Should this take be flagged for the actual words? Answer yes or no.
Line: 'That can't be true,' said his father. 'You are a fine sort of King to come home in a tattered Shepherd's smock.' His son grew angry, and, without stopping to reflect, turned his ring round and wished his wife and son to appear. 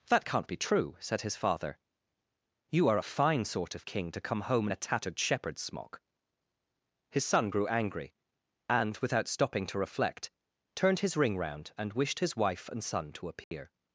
no